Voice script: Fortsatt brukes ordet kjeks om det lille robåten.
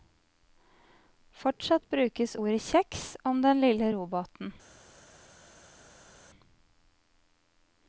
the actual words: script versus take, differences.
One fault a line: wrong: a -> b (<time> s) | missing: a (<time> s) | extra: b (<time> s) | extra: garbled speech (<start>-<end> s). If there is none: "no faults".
wrong: det -> den (3.5 s)